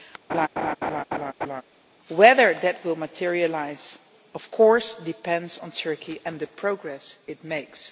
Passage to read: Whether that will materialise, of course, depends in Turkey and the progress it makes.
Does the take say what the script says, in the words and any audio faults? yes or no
no